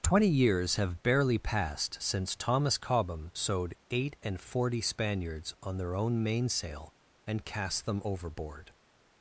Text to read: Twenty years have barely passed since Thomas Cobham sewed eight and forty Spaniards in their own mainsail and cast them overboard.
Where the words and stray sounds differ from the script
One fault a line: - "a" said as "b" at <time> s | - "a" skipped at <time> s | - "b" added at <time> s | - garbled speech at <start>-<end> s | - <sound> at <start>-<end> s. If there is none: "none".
- "in" said as "on" at 5.6 s